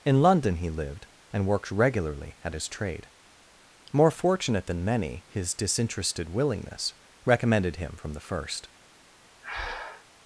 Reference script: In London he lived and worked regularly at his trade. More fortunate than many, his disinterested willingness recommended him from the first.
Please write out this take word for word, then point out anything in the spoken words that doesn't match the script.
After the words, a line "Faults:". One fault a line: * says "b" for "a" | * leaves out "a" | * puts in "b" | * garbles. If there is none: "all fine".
In London he lived and worked regularly at his trade. More fortunate than many, his disinterested willingness recommended him from the first.
Faults:
all fine